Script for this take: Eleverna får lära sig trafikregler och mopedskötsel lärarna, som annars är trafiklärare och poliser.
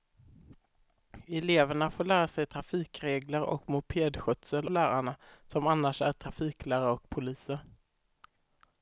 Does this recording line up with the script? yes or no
yes